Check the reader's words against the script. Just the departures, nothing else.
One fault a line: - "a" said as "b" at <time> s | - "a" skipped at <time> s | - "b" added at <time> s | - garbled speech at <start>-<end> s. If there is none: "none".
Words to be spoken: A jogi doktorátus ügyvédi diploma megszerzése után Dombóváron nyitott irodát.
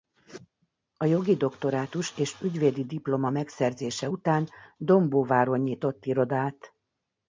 - "és" added at 2.2 s